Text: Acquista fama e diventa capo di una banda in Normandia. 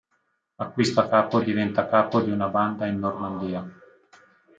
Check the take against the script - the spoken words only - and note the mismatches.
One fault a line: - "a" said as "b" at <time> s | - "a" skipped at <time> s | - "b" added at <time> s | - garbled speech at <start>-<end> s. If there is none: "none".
- "fama" said as "capo" at 1.1 s